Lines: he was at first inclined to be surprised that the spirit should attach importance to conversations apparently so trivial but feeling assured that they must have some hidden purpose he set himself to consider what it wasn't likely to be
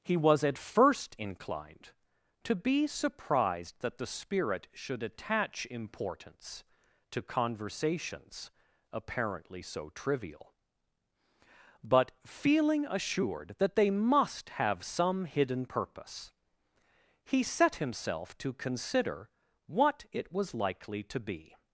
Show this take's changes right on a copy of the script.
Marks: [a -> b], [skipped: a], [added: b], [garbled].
he was at first inclined to be surprised that the spirit should attach importance to conversations apparently so trivial but feeling assured that they must have some hidden purpose he set himself to consider what it [wasn't -> was] likely to be